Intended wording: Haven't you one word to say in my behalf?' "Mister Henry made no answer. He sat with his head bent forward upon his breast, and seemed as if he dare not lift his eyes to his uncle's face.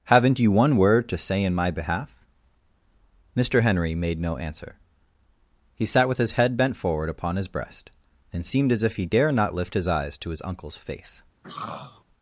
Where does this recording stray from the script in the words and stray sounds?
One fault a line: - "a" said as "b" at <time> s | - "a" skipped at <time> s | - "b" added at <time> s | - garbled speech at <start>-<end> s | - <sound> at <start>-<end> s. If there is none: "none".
- throat clearing at 11.4-12.0 s